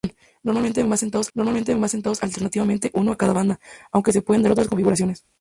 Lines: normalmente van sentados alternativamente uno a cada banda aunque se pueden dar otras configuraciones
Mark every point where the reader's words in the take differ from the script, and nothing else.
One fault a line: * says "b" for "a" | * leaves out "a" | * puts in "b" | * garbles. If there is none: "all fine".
* puts in "normalmente van sentados"